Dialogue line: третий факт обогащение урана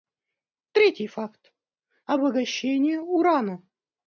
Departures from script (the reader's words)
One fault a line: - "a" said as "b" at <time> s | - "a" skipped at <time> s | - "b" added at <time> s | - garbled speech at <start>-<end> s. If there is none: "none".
none